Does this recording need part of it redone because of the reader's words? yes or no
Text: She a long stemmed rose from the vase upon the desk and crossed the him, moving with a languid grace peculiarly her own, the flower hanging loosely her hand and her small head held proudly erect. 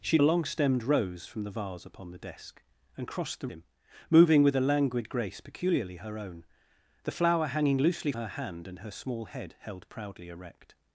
no